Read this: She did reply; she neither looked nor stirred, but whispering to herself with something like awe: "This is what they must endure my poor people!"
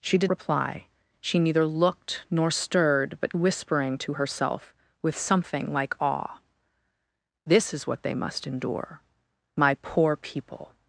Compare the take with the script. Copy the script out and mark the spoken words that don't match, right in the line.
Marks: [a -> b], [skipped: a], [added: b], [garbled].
She did reply; she neither looked nor stirred, but whispering to herself with something like awe: "This is what they must endure my poor people!"